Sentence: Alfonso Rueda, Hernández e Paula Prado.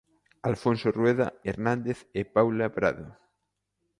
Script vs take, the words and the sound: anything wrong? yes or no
no